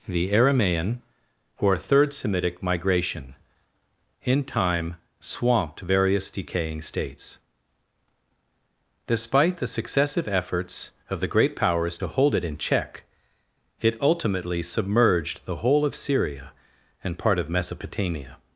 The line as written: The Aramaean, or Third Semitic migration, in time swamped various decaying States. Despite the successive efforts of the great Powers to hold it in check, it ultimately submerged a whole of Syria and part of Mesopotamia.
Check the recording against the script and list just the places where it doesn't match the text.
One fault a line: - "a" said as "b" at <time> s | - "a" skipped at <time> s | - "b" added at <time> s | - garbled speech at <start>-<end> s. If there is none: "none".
- "a" said as "the" at 15.4 s